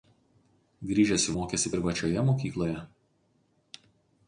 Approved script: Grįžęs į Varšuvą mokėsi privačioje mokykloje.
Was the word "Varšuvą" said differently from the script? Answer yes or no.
yes